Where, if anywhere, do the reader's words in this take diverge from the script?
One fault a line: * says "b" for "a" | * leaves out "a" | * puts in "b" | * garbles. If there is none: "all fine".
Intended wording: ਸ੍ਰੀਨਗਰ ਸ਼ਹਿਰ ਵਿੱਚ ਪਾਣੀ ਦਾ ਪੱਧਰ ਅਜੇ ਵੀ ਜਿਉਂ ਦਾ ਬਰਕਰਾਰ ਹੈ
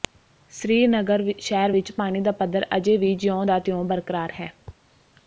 * puts in "ਤਿਉਂ"